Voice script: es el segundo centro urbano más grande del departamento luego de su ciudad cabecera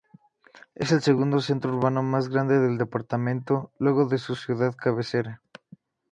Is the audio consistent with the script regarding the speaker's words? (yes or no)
yes